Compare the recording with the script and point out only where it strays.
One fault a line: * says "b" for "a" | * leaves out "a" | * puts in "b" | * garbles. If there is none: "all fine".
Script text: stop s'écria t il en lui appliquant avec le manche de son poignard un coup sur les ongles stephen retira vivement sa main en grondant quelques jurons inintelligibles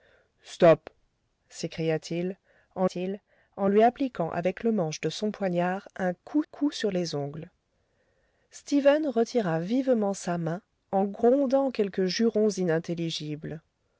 * puts in "t il en"
* puts in "coup"